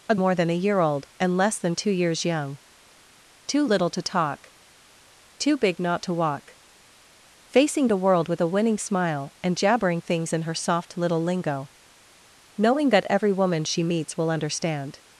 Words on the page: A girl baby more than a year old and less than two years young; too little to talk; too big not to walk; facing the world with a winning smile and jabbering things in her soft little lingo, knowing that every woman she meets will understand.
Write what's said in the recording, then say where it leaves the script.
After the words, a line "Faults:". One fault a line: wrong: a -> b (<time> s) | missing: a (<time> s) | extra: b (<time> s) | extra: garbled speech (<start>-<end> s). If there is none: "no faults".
A more than a year old and less than two years young; too little to talk; too big not to walk; facing the world with a winning smile and jabbering things in her soft little lingo, knowing that every woman she meets will understand.
Faults:
missing: girl baby (0.1 s)